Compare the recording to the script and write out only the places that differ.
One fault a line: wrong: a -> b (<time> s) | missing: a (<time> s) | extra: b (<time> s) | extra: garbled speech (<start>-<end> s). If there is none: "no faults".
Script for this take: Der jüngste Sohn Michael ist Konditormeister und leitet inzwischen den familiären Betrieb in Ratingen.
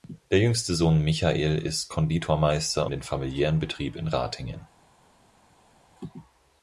missing: und leitet inzwischen (2.9 s)